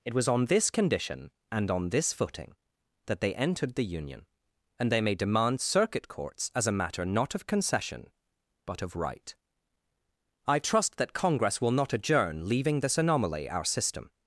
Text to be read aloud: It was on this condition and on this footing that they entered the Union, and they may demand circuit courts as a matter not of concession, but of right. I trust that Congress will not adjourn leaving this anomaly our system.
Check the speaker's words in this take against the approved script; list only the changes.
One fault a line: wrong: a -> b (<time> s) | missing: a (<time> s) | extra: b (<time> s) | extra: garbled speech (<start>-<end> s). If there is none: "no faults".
no faults